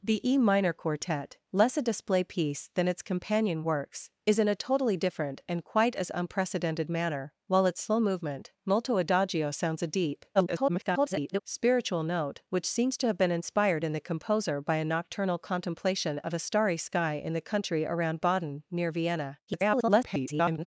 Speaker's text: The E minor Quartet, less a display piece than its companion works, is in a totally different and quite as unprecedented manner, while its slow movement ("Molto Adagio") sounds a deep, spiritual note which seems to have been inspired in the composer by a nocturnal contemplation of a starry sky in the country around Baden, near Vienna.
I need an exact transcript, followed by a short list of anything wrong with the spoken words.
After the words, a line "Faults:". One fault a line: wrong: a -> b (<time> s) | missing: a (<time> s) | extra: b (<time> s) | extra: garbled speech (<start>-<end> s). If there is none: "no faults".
The E minor Quartet, less a display piece than its companion works, is in a totally different and quite as unprecedented manner, while its slow movement ("Molto Adagio") sounds a deep, [garbled] spiritual note which seems to have been inspired in the composer by a nocturnal contemplation of a starry sky in the country around Baden, near Vienna. [garbled]
Faults:
extra: garbled speech (10.3-11.4 s)
extra: garbled speech (19.5-20.7 s)